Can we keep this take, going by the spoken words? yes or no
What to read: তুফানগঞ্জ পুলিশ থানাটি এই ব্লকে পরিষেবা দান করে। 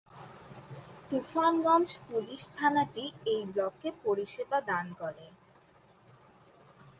yes